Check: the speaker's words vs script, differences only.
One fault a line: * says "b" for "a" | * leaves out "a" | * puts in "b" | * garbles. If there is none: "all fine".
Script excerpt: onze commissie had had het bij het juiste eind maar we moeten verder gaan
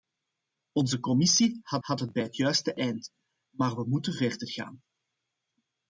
all fine